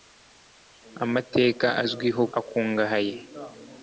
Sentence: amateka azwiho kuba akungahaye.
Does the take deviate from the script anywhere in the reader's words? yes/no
yes